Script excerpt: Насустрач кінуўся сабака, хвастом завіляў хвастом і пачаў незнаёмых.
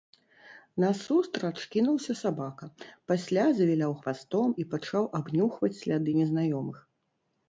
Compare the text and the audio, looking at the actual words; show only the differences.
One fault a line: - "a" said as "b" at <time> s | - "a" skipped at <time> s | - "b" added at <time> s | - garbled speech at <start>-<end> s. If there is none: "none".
- "хвастом" said as "пасля" at 3.1 s
- "абнюхваць сляды" added at 5.2 s